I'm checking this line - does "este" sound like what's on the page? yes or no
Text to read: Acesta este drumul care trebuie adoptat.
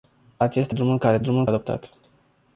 no